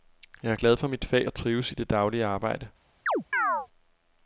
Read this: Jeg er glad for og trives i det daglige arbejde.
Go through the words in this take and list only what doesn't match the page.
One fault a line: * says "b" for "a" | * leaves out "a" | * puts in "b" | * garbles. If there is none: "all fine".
* puts in "mit fag"